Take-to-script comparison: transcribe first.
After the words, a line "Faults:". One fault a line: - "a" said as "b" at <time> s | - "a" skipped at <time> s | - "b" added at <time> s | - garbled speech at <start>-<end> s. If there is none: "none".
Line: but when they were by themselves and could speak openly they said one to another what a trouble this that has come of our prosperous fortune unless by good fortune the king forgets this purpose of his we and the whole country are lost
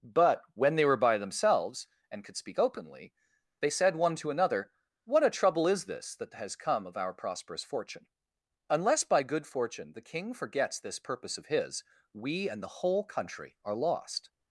but when they were by themselves and could speak openly they said one to another what a trouble is this that has come of our prosperous fortune unless by good fortune the king forgets this purpose of his we and the whole country are lost
Faults:
- "is" added at 5.7 s